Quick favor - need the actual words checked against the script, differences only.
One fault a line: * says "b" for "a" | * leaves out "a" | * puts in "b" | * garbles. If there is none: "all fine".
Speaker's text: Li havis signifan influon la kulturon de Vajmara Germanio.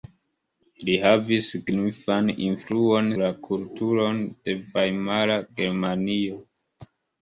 all fine